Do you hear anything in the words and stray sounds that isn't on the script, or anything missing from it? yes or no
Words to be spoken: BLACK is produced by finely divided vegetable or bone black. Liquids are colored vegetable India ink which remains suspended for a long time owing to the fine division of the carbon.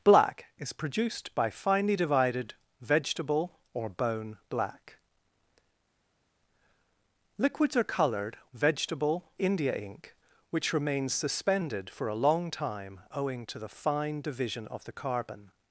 no